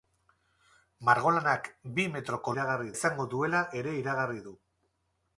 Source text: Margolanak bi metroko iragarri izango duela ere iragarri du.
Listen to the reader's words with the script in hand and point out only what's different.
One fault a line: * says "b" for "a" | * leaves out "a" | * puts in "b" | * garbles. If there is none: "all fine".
all fine